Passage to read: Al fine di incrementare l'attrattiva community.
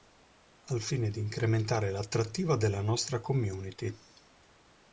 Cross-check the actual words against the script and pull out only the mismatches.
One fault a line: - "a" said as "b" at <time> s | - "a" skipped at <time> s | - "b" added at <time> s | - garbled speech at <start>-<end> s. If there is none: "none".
- "della nostra" added at 2.5 s